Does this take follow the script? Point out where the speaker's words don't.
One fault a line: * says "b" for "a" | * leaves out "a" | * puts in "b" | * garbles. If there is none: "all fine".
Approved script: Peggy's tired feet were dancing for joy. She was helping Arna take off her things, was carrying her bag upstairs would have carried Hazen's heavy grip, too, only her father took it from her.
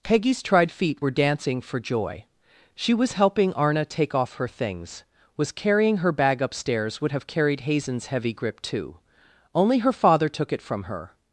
* says "tried" for "tired"